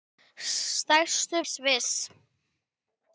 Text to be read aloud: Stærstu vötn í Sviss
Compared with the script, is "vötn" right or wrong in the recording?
wrong